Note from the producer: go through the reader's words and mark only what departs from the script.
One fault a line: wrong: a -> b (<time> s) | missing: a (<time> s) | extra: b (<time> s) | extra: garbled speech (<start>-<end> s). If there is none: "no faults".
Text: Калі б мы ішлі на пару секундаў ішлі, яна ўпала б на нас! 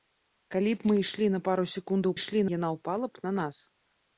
no faults